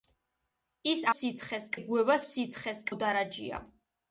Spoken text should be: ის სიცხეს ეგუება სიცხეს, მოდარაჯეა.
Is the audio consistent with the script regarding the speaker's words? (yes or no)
yes